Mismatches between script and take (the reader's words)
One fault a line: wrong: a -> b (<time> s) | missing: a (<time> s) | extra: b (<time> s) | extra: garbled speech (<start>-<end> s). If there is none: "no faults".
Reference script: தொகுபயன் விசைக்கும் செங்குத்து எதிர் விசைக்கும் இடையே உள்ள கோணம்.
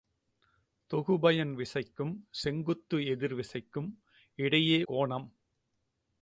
missing: உள்ள (4.8 s)